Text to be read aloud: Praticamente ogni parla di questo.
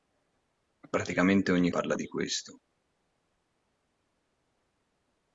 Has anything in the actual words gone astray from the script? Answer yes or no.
no